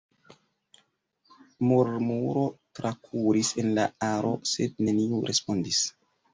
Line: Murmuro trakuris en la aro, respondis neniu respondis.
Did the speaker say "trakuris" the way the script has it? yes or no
yes